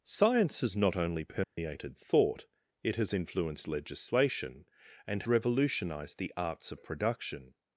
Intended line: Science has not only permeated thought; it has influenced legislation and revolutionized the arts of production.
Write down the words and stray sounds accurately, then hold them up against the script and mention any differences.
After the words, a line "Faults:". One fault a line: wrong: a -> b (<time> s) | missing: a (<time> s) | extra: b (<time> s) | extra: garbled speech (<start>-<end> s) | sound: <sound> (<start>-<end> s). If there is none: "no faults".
Science has not only permeated thought; it has influenced legislation and revolutionized the arts of production.
Faults:
sound: dropout (1.4-1.6 s)